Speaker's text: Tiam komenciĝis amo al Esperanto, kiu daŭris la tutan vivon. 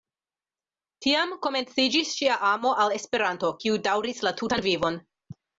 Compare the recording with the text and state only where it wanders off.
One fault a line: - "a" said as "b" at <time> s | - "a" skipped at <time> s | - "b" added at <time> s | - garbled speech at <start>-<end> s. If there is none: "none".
- "ŝia" added at 2.2 s